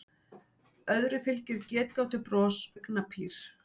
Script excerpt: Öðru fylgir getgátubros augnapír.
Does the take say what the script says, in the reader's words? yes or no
yes